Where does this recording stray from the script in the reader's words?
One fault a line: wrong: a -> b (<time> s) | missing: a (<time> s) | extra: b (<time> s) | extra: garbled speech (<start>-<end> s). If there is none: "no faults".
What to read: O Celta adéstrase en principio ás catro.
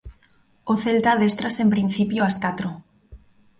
no faults